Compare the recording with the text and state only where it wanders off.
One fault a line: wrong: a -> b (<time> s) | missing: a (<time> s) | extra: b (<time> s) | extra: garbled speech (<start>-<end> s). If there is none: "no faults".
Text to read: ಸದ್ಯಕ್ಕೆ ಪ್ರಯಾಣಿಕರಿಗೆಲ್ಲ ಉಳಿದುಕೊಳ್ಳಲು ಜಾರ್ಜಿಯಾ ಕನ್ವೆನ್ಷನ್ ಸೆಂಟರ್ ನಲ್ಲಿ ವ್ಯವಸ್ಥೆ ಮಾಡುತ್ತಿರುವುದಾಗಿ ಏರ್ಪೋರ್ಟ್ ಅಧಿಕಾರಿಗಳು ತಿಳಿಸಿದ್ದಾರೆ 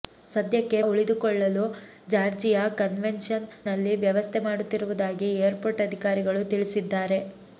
missing: ಪ್ರಯಾಣಿಕರಿಗೆಲ್ಲ (0.8 s)
missing: ಸೆಂಟರ್ (3.5 s)